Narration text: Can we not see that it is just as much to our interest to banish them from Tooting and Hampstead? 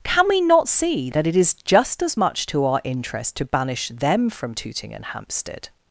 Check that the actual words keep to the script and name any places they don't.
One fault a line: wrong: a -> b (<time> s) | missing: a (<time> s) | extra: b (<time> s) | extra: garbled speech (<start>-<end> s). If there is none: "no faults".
no faults